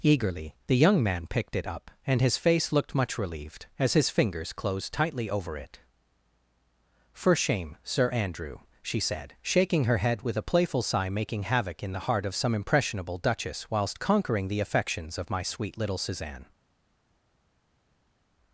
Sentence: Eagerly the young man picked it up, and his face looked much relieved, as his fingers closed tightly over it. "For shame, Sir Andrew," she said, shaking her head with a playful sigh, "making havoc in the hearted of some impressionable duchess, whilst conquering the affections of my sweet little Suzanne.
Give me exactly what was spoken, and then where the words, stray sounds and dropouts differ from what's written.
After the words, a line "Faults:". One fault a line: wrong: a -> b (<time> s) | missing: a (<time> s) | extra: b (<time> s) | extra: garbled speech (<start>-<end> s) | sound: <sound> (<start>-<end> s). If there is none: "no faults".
Eagerly the young man picked it up, and his face looked much relieved, as his fingers closed tightly over it. "For shame, Sir Andrew," she said, shaking her head with a playful sigh, "making havoc in the heart of some impressionable duchess, whilst conquering the affections of my sweet little Suzanne.
Faults:
wrong: hearted -> heart (12.1 s)